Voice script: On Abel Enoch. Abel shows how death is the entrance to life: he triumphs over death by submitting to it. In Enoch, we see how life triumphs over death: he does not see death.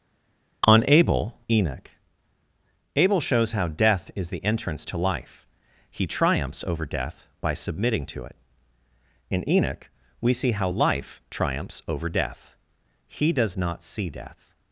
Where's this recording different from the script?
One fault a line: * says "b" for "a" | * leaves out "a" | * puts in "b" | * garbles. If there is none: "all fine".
all fine